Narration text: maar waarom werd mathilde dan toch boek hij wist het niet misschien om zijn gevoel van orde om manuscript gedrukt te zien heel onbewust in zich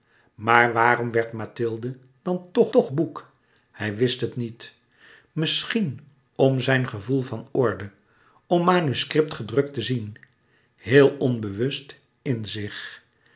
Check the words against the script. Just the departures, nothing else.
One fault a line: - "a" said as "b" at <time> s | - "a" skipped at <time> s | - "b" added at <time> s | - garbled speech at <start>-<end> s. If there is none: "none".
- "toch" added at 2.7 s